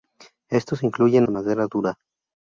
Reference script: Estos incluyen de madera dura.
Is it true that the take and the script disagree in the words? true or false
false